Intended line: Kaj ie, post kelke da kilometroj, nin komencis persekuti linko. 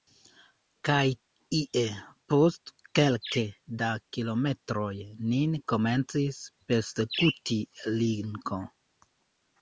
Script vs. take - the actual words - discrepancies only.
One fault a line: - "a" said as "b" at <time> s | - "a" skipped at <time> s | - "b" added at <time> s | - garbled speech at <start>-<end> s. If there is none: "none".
none